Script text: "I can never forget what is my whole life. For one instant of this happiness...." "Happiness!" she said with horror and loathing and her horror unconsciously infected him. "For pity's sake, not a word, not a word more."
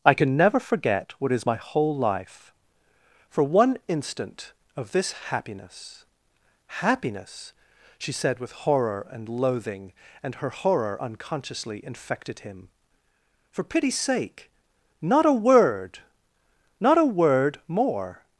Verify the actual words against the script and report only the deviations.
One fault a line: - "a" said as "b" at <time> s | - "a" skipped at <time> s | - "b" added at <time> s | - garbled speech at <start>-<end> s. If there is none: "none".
none